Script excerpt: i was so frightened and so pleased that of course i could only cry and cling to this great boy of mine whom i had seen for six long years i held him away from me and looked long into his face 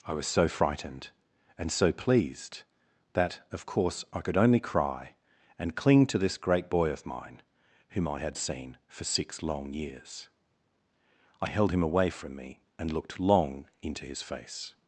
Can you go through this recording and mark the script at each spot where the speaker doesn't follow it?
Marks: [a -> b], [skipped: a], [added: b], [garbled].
i was so frightened and so pleased that of course i could only cry and cling to this great boy of mine whom i had seen for six long years i held him away from me and looked long into his face